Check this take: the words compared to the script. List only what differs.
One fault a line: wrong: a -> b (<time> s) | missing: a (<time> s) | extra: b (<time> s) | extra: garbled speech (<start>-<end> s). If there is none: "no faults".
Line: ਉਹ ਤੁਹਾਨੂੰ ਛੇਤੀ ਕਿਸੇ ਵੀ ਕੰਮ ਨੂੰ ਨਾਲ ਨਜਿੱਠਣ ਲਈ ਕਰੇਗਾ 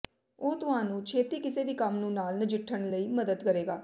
extra: ਮਦਦ (3.1 s)